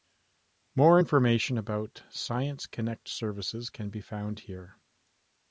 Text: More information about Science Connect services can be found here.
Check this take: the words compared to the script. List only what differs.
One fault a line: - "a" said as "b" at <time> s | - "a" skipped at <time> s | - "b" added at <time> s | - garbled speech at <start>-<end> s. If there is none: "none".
none